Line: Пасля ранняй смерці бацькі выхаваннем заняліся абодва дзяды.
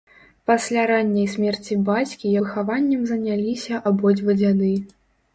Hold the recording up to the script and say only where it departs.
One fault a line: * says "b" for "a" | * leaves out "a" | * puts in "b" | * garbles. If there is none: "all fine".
all fine